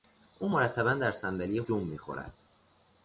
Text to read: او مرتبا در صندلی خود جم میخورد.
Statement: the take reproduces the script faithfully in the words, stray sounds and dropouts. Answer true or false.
false